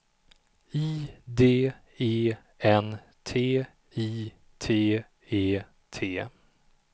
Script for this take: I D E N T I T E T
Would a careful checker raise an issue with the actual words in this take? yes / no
no